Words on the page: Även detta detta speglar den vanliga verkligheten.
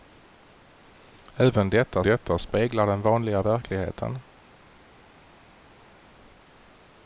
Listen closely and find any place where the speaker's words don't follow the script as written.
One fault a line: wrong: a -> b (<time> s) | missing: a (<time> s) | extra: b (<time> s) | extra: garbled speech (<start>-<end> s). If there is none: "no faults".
no faults